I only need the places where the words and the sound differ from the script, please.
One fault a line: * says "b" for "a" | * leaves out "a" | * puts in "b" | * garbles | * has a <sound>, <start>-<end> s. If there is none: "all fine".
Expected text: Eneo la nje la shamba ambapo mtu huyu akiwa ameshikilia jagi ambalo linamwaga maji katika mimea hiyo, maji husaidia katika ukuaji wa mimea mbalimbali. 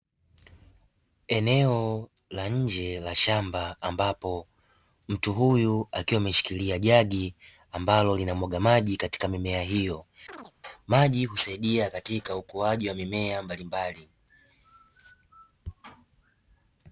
* has a chirp, 10.3-10.5 s